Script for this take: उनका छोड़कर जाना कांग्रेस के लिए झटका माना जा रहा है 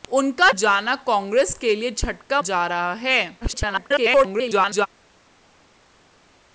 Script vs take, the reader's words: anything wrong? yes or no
yes